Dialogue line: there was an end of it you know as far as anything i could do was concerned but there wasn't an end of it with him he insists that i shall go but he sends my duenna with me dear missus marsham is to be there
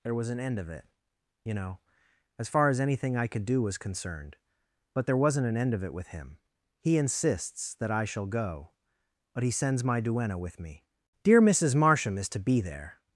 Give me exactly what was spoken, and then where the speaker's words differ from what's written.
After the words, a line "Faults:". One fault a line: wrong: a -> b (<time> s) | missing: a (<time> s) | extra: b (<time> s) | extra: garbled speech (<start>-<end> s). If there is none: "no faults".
there was an end of it you know as far as anything i could do was concerned but there wasn't an end of it with him he insists that i shall go but he sends my duenna with me dear missus marsham is to be there
Faults:
no faults